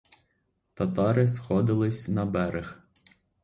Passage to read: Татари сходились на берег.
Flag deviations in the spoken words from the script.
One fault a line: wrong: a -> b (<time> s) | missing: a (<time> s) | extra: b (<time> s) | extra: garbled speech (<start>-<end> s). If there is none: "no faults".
no faults